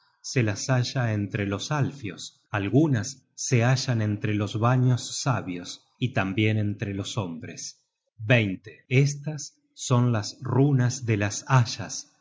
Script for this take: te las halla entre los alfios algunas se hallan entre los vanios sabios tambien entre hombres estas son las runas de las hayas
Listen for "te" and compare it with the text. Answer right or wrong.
wrong